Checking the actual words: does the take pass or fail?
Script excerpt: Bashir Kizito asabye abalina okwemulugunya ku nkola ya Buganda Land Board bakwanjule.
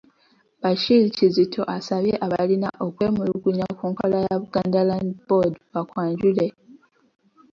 pass